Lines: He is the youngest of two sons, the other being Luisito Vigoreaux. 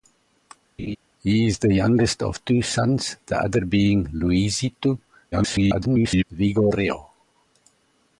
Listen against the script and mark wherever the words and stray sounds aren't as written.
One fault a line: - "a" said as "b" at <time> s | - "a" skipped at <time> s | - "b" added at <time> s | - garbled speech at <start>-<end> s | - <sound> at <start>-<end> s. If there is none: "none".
- laugh at 0.8-1.0 s
- garbled speech at 5.3-6.2 s